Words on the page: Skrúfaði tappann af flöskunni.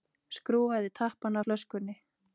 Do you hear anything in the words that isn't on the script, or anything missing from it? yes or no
no